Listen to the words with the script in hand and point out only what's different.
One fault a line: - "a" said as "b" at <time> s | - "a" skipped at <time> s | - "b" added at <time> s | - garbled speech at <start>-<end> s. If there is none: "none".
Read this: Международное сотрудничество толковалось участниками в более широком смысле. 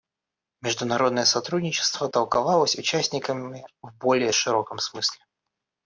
none